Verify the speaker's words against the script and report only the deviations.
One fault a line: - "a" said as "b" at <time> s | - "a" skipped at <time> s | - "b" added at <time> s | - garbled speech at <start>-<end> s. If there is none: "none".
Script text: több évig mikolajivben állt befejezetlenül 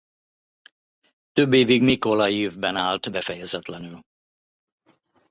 none